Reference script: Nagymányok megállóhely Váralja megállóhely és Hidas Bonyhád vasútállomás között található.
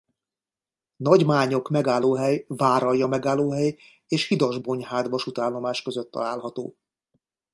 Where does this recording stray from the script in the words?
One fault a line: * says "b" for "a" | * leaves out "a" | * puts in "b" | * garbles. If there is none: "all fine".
all fine